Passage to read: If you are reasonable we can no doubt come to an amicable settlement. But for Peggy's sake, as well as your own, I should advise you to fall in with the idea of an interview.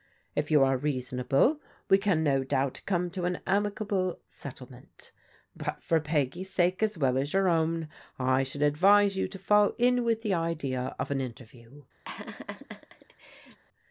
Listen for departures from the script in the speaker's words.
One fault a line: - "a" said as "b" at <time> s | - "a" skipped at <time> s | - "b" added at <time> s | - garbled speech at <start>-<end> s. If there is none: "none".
none